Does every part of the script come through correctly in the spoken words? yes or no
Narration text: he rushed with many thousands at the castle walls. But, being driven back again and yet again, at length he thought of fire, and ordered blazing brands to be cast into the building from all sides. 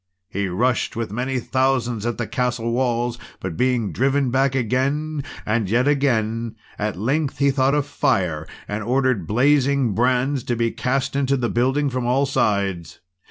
yes